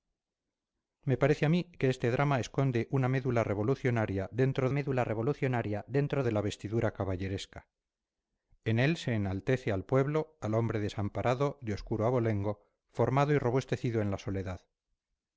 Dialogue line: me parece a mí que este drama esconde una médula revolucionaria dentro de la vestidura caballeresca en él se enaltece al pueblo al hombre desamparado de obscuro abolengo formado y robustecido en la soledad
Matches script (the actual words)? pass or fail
fail